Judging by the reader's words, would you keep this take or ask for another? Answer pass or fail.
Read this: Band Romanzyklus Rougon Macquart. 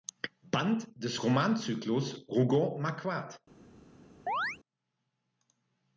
fail